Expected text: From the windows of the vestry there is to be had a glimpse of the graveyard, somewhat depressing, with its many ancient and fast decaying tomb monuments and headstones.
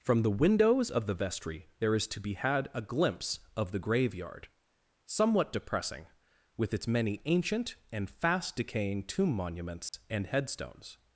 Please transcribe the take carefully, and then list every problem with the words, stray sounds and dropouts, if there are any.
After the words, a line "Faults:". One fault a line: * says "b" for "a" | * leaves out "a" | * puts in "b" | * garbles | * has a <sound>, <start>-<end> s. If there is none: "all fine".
From the windows of the vestry there is to be had a glimpse of the graveyard, somewhat depressing, with its many ancient and fast decaying tomb monuments and headstones.
Faults:
* has a dropout, 9.9-9.9 s